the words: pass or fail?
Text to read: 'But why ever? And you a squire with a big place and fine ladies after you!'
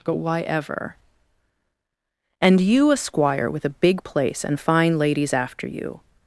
pass